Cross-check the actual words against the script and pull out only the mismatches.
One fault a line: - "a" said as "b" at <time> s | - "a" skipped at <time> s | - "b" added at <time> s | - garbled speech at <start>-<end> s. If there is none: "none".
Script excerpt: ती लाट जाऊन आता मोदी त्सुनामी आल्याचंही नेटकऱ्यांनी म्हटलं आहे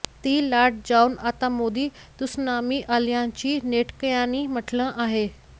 none